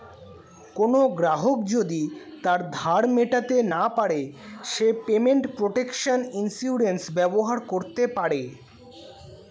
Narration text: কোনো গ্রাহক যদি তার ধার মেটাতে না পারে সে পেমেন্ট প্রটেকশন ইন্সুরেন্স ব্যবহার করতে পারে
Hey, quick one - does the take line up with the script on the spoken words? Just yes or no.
yes